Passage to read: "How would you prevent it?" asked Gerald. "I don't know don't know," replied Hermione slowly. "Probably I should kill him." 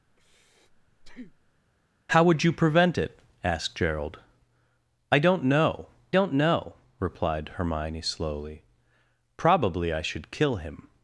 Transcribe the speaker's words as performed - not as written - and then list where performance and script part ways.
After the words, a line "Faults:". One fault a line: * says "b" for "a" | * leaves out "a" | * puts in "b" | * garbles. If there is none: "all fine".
"How would you prevent it?" asked Gerald. "I don't know don't know," replied Hermione slowly. "Probably I should kill him."
Faults:
all fine